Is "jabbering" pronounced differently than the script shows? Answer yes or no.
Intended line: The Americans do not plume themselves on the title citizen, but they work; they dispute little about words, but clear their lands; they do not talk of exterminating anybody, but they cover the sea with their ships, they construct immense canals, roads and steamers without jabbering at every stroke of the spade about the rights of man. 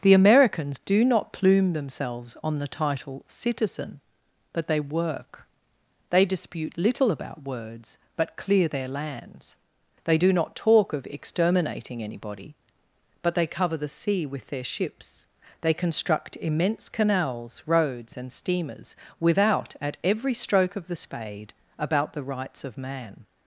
yes